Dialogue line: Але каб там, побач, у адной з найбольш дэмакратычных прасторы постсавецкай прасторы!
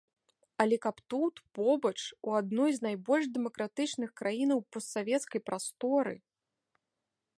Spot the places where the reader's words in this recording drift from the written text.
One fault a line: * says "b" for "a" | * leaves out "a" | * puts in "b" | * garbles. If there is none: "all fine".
* says "тут" for "там"
* says "краінаў" for "прасторы"